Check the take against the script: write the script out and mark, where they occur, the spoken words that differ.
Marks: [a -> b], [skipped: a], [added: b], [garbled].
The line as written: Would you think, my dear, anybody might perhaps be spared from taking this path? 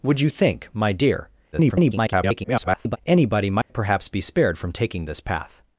Would you think, my dear, [garbled] anybody might perhaps be spared from taking this path?